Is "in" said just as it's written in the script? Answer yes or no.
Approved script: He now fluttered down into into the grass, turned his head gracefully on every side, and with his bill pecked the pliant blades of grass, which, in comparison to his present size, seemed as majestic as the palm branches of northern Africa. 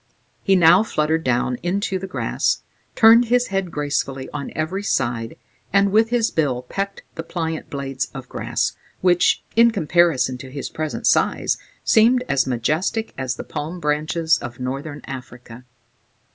yes